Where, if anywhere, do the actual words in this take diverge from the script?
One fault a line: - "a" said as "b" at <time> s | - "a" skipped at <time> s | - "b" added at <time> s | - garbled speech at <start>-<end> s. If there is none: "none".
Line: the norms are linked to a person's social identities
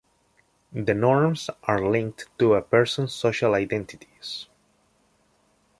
none